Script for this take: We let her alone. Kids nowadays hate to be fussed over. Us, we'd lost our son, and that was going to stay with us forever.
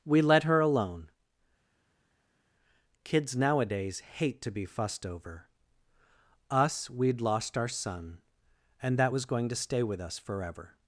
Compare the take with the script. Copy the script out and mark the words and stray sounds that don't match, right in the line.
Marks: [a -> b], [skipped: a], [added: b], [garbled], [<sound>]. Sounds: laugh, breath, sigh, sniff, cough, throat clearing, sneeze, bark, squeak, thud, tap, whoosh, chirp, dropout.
We let her alone. Kids nowadays hate to be fussed over. Us, we'd lost our son, and that was going to stay with us forever.